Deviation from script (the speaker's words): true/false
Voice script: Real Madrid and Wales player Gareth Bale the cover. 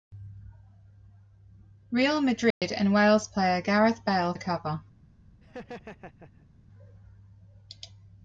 false